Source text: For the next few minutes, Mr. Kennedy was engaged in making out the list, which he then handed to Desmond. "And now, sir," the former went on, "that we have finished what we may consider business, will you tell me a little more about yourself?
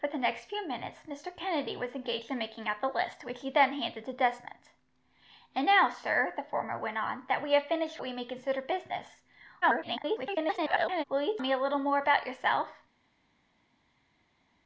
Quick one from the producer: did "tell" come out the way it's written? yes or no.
no